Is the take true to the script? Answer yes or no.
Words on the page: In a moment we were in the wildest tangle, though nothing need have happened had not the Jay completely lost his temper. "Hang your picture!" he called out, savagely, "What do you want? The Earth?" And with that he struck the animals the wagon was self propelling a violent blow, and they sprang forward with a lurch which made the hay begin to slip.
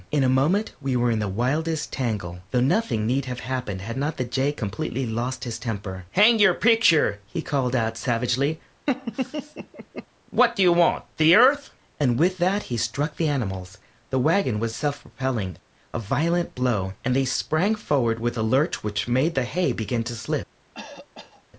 yes